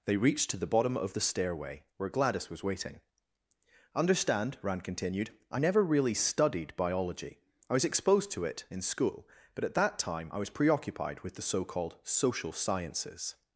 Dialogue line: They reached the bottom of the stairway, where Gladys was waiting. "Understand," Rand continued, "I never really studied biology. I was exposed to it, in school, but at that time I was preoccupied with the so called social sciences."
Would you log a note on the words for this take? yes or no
yes